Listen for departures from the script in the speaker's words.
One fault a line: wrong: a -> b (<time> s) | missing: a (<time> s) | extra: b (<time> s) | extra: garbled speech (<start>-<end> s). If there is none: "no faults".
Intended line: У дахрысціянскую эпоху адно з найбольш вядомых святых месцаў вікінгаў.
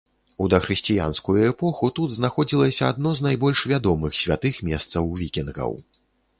extra: тут знаходзілася (2.0 s)